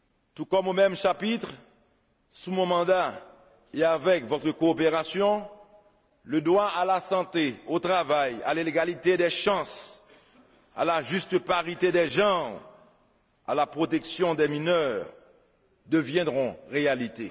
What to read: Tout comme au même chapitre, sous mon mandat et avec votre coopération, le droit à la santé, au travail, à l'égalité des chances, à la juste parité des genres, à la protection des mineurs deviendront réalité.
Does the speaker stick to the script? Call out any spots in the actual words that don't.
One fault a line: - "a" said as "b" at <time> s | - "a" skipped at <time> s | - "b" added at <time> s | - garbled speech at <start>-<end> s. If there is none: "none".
none